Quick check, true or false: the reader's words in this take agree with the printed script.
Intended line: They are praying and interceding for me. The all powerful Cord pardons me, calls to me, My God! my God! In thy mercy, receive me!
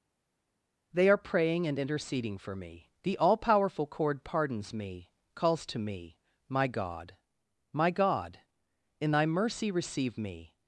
true